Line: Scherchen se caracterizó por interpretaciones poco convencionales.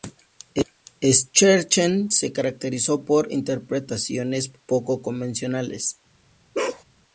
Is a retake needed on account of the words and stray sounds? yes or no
yes